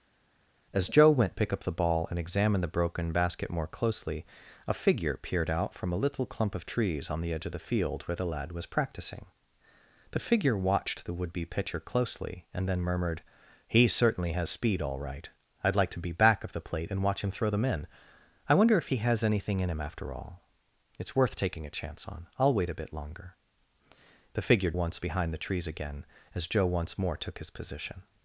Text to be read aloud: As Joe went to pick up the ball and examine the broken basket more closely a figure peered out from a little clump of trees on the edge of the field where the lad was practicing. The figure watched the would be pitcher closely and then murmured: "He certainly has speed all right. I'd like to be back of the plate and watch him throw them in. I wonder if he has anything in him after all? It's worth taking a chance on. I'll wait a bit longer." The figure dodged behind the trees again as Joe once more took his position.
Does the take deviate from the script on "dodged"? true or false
true